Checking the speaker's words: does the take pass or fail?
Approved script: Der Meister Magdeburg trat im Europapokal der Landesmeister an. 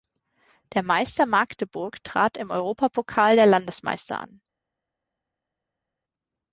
pass